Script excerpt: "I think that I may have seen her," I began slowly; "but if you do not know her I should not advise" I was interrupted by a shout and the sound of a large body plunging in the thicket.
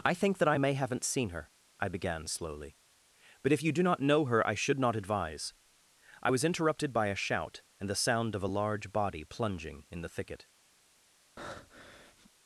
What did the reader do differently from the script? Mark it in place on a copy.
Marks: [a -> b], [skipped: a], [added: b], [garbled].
"I think that I may [have -> haven't] seen her," I began slowly; "but if you do not know her I should not advise" I was interrupted by a shout and the sound of a large body plunging in the thicket.